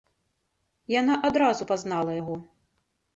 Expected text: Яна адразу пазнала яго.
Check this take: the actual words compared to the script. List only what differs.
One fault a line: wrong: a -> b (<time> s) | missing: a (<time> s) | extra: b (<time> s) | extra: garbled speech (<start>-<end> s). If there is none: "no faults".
no faults